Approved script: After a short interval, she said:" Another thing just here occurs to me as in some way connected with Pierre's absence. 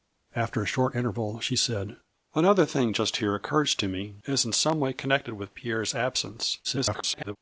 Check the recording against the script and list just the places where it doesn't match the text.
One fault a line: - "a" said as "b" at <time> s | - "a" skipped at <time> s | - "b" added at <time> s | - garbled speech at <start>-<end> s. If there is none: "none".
- garbled speech at 6.6-7.4 s